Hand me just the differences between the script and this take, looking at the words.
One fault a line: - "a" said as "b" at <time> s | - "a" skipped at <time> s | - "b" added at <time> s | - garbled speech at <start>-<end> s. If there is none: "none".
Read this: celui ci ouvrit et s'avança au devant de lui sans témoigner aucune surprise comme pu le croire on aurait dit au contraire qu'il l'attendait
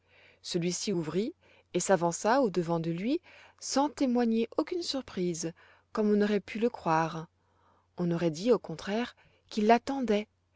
- "on aurait" added at 6.1 s